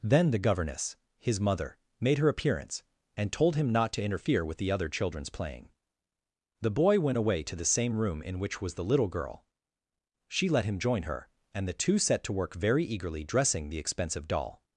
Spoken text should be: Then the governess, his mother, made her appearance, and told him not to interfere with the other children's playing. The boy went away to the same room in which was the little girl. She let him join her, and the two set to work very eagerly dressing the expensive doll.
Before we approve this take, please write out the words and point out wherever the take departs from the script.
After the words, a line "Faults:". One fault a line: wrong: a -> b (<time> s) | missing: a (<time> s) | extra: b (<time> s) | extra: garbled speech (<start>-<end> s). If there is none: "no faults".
Then the governess, his mother, made her appearance, and told him not to interfere with the other children's playing. The boy went away to the same room in which was the little girl. She let him join her, and the two set to work very eagerly dressing the expensive doll.
Faults:
no faults